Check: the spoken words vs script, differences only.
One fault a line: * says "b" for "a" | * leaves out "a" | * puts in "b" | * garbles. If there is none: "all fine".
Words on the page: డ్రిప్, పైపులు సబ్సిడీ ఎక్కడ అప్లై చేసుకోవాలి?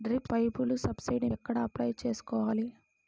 all fine